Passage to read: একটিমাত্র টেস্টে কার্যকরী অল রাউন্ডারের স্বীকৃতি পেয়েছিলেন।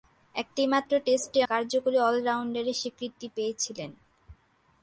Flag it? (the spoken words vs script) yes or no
no